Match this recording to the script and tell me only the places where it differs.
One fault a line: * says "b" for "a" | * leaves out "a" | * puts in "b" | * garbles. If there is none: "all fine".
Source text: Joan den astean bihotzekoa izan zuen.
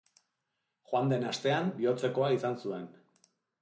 all fine